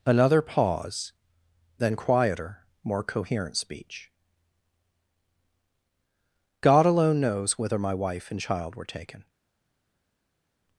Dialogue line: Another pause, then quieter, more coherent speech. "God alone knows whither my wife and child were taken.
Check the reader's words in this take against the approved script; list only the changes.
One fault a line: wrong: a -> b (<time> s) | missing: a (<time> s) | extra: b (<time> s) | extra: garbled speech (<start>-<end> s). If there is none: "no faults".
no faults